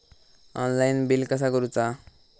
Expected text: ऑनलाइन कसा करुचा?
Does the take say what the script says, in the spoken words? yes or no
no